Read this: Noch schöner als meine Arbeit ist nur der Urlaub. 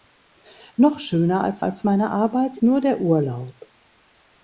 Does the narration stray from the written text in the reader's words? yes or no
yes